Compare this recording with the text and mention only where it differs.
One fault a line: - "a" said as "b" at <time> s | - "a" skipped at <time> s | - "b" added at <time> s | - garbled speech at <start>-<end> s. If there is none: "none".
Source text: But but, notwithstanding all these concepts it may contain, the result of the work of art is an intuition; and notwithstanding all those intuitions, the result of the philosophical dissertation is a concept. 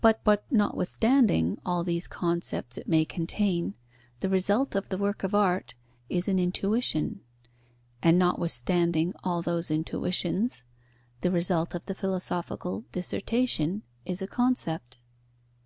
none